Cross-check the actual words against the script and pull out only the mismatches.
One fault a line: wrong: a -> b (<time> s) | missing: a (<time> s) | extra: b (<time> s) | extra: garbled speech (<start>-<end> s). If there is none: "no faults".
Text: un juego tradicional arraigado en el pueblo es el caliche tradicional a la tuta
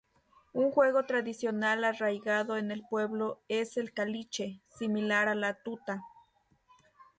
wrong: tradicional -> similar (4.6 s)